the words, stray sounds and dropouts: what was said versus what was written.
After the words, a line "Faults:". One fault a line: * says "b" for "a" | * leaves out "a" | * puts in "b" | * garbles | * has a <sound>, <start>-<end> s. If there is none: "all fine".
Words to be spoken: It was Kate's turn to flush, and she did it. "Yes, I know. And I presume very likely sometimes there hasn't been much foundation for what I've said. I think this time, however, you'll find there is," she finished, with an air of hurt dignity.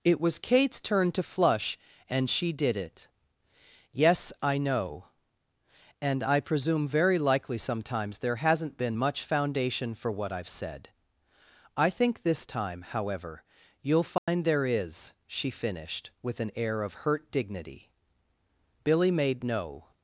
It was Kate's turn to flush, and she did it. "Yes, I know. And I presume very likely sometimes there hasn't been much foundation for what I've said. I think this time, however, you'll find there is," she finished, with an air of hurt dignity. Billy made no
Faults:
* has a dropout, 14.2-14.3 s
* puts in "Billy made no"